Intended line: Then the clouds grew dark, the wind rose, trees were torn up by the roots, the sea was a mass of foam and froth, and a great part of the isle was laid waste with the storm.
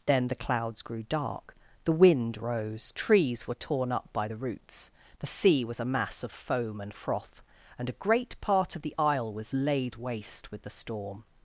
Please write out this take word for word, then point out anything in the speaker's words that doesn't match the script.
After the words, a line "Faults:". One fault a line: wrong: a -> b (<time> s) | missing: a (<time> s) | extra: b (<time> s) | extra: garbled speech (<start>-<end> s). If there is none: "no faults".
Then the clouds grew dark, the wind rose, trees were torn up by the roots, the sea was a mass of foam and froth, and a great part of the isle was laid waste with the storm.
Faults:
no faults